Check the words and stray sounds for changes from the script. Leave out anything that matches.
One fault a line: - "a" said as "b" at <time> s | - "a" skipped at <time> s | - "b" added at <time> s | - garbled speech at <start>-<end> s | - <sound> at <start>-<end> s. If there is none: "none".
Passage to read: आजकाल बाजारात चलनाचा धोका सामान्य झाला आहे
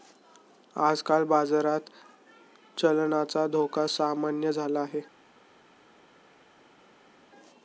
none